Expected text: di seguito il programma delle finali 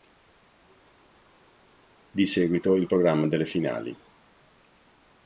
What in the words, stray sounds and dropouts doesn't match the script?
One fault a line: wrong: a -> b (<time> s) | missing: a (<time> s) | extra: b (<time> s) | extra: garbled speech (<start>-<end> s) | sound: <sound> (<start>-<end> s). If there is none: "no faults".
no faults